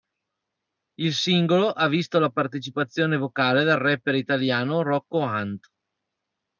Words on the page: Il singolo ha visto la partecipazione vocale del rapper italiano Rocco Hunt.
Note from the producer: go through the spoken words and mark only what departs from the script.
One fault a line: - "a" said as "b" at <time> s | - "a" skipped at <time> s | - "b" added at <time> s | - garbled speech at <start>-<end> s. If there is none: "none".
none